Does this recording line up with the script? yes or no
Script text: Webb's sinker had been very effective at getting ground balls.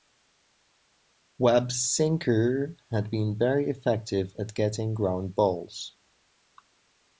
yes